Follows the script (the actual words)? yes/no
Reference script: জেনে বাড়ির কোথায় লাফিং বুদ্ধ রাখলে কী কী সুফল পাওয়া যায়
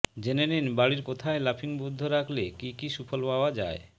no